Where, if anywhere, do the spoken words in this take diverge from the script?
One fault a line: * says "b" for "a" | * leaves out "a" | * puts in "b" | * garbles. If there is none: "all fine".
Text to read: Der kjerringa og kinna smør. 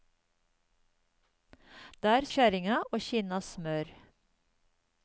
all fine